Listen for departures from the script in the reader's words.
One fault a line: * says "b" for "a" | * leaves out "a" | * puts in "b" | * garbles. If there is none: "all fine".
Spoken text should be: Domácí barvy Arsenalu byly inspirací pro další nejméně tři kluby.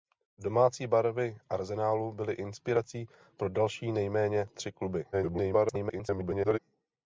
* garbles